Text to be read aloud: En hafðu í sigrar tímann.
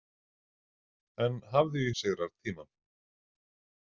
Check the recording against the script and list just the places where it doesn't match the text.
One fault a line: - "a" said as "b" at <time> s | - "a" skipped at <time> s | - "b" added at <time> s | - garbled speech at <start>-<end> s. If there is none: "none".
none